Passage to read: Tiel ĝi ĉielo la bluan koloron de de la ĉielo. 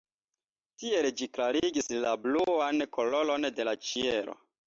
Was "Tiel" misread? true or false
false